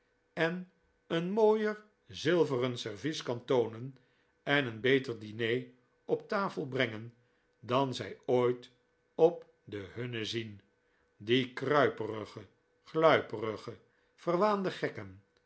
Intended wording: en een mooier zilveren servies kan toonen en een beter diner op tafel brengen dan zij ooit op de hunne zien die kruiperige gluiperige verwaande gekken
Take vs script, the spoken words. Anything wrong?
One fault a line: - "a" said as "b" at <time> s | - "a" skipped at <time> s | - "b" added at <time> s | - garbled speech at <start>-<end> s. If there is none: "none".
none